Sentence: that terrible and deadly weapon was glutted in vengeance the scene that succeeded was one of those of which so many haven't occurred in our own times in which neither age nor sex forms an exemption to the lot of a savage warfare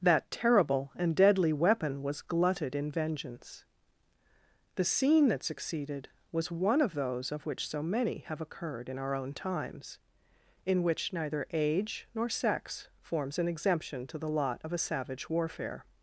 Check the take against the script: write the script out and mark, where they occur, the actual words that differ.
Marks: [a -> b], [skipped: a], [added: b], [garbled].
that terrible and deadly weapon was glutted in vengeance the scene that succeeded was one of those of which so many [haven't -> have] occurred in our own times in which neither age nor sex forms an exemption to the lot of a savage warfare